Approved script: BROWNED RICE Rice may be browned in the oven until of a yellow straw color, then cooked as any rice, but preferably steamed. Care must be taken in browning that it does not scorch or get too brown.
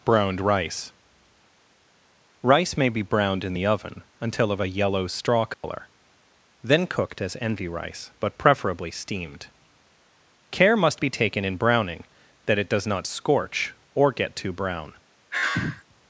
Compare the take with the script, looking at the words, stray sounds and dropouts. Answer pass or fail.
fail